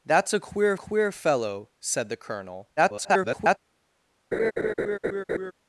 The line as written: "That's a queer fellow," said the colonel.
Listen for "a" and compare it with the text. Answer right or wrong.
right